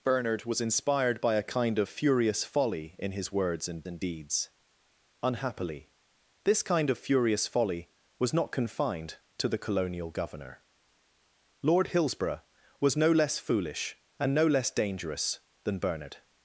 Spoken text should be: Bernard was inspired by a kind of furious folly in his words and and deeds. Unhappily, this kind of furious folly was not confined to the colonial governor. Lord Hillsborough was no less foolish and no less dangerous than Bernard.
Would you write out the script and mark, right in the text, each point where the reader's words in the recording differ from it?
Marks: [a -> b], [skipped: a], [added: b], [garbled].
Bernard was inspired by a kind of furious folly in his words and and deeds. Unhappily, this kind of furious folly was not confined to the colonial governor. Lord Hillsborough was no less foolish and no less dangerous than Bernard.